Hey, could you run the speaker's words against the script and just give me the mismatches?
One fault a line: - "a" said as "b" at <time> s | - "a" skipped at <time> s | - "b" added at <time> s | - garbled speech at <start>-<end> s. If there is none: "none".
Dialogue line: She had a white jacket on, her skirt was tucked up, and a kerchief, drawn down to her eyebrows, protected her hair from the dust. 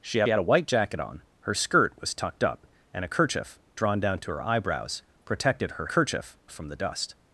- "had" added at 0.3 s
- "hair" said as "kerchief" at 5.9 s